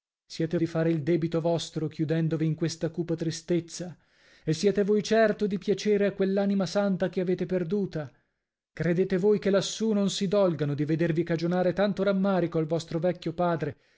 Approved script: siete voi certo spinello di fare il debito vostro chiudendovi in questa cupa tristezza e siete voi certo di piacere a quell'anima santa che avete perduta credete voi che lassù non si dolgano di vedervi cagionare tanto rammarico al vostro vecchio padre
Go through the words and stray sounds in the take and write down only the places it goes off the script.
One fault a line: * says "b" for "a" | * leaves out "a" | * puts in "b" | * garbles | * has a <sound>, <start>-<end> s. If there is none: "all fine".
* leaves out "voi certo spinello"